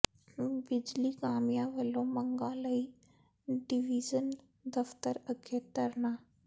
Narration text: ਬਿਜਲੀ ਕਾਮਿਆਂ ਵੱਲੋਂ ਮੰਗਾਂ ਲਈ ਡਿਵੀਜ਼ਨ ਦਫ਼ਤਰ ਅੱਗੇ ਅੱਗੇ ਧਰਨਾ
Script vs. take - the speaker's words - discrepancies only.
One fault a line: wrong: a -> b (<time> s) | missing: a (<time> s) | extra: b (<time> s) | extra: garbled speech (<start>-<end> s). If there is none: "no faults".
missing: ਅੱਗੇ (5.6 s)